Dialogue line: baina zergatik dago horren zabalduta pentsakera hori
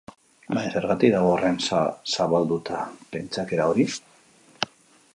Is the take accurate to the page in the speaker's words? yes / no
yes